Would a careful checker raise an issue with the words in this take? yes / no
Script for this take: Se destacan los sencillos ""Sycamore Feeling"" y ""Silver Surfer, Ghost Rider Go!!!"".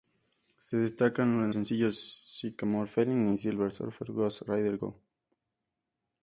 yes